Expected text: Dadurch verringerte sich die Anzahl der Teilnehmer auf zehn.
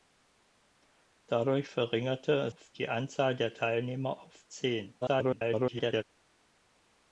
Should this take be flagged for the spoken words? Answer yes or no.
yes